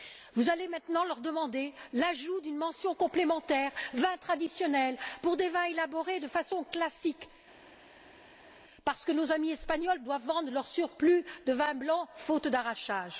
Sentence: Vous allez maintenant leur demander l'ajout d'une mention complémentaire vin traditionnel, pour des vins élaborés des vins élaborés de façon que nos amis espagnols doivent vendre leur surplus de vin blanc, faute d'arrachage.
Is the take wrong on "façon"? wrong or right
wrong